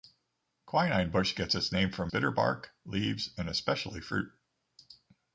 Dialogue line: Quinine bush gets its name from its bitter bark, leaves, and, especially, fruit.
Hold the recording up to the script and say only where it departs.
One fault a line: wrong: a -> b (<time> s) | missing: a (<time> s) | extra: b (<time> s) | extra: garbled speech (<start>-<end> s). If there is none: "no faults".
missing: its (2.1 s)